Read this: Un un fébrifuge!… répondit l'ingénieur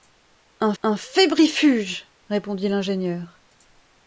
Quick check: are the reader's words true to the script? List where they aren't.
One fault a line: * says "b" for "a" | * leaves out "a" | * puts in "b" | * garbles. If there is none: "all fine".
all fine